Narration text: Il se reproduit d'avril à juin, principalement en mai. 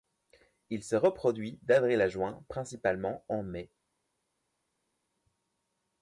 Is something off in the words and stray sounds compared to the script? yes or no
no